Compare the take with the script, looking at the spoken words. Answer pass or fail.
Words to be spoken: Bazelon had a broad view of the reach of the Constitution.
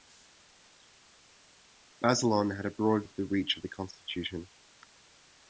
fail